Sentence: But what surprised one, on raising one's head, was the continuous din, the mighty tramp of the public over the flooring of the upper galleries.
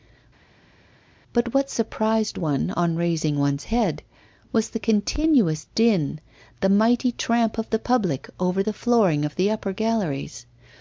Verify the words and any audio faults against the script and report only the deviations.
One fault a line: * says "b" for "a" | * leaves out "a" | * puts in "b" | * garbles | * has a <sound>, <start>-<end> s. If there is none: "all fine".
all fine